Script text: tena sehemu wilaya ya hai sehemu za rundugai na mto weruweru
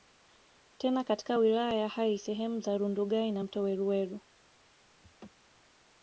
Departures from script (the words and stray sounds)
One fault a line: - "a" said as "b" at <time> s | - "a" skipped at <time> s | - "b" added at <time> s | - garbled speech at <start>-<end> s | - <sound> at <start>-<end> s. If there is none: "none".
- "sehemu" said as "katika" at 1.0 s
- laugh at 5.0-5.3 s